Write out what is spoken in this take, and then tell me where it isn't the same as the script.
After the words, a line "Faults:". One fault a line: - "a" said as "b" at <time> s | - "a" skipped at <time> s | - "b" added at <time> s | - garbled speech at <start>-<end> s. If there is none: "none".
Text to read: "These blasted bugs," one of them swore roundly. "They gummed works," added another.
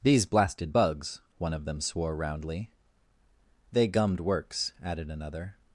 "These blasted bugs," one of them swore roundly. "They gummed works," added another.
Faults:
none